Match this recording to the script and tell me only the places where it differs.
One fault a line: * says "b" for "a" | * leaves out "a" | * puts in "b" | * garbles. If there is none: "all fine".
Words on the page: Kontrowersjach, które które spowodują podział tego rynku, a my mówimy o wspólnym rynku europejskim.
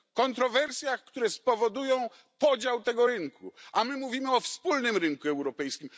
* leaves out "które"